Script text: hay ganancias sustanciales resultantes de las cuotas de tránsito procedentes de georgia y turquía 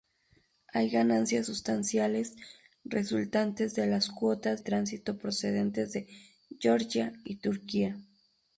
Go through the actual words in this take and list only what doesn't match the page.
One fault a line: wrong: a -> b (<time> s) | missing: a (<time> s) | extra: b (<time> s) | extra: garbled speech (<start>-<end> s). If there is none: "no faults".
missing: de (4.6 s)